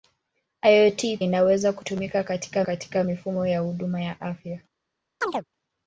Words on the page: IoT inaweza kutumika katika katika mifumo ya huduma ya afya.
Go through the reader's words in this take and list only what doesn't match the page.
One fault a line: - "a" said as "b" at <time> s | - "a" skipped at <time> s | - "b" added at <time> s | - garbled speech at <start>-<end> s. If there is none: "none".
none